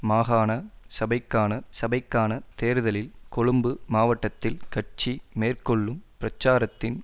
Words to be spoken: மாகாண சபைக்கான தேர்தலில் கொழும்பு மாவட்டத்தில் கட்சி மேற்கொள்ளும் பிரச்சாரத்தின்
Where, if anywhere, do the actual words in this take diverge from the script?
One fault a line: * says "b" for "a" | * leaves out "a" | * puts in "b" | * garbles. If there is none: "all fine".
* puts in "சபைக்கான"